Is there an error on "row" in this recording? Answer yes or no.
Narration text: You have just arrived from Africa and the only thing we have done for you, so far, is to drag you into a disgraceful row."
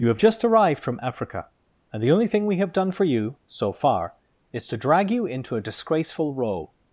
no